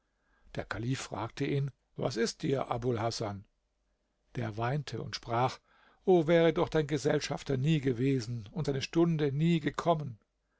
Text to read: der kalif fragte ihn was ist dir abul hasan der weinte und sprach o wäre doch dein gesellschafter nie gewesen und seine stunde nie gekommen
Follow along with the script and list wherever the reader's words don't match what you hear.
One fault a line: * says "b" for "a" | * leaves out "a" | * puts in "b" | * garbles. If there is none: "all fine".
all fine